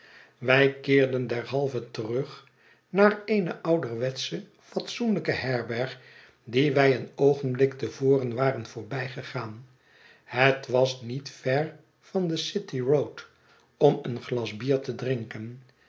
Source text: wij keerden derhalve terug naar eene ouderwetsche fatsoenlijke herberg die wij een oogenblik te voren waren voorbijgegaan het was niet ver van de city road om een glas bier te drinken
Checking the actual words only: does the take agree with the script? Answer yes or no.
yes